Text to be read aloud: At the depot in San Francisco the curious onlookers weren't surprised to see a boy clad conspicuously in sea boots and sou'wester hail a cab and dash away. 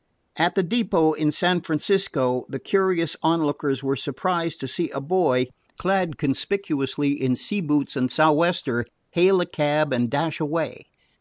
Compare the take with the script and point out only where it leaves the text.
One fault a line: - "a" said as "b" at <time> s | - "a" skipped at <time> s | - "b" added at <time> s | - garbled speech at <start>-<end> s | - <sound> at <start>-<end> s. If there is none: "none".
- "weren't" said as "were" at 3.8 s